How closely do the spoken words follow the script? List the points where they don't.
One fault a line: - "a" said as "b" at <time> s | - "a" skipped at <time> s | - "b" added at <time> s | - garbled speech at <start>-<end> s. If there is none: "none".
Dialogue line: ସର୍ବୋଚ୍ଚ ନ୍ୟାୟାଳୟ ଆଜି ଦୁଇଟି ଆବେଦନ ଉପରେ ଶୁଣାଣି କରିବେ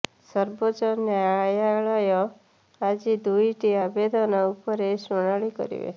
none